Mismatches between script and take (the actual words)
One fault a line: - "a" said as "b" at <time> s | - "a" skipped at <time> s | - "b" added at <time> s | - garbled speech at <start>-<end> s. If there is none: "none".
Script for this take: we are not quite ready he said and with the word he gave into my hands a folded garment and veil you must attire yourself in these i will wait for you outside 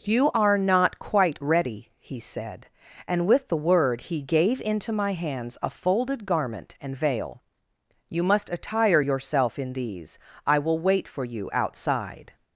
- "we" said as "you" at 0.0 s